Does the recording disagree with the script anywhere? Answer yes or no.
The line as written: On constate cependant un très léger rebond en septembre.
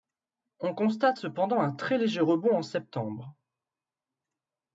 no